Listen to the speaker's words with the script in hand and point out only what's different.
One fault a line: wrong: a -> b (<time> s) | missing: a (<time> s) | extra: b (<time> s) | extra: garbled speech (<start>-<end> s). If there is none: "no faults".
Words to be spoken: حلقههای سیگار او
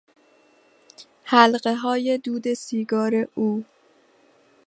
extra: دود (2.2 s)